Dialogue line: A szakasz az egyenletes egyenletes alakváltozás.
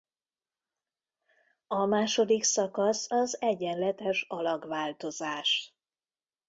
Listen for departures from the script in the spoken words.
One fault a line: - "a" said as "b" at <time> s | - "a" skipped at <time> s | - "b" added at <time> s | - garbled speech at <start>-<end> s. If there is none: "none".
- "második" added at 1.9 s
- "egyenletes" skipped at 4.2 s